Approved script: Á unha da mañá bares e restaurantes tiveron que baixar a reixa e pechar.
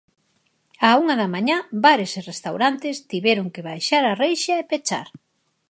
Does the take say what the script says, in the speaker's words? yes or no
yes